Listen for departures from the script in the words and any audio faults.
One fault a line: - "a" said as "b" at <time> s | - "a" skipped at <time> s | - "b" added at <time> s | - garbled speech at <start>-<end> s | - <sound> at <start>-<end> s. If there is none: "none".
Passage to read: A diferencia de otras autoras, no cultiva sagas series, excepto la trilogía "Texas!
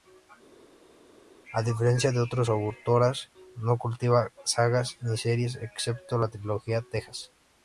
- "ni" added at 5.0 s